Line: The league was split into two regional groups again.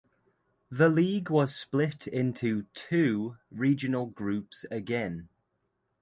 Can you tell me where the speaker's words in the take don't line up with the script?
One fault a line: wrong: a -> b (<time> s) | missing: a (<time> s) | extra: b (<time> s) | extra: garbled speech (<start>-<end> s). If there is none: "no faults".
no faults